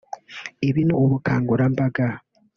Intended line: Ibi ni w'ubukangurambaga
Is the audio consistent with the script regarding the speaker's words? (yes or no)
yes